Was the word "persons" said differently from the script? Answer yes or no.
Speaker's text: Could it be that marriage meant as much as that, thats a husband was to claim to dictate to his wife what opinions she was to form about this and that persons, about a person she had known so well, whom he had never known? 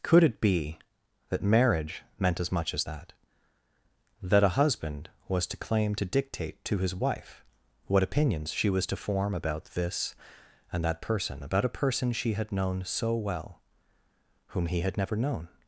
yes